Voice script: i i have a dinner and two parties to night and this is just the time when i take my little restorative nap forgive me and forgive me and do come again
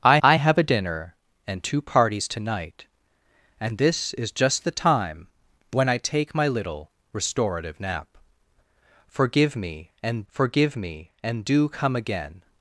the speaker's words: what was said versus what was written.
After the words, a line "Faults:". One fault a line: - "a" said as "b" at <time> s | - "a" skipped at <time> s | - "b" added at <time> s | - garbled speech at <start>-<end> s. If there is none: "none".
i i have a dinner and two parties to night and this is just the time when i take my little restorative nap forgive me and forgive me and do come again
Faults:
none